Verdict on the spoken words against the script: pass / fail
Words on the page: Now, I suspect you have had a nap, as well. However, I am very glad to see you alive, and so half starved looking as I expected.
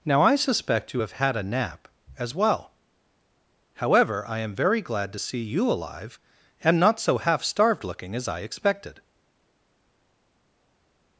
fail